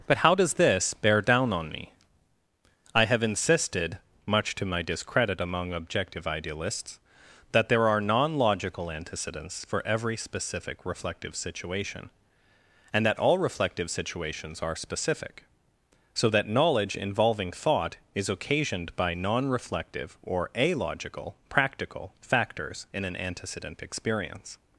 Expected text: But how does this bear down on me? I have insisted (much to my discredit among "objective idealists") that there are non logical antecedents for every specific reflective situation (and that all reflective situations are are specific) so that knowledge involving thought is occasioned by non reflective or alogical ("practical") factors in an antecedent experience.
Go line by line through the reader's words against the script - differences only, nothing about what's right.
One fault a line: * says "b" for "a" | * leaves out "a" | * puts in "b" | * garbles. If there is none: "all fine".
* leaves out "are"